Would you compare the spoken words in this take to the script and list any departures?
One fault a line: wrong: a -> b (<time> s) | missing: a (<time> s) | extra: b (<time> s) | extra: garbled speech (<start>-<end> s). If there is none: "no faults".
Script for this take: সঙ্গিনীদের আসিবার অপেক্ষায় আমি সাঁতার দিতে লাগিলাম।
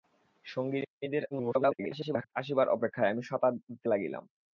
extra: garbled speech (1.3-2.3 s)